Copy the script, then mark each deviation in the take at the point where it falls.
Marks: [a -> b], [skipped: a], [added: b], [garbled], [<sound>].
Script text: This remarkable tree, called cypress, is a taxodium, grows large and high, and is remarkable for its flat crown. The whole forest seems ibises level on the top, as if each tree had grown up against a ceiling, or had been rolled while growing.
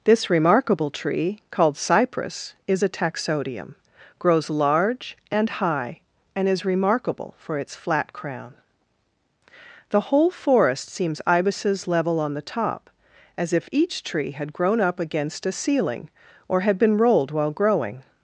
This remarkable tree, called cypress, is a taxodium, grows large and high, and is remarkable for its flat crown. The whole forest seems ibises level on the top, as if each tree had grown up against a ceiling, or had been rolled while growing.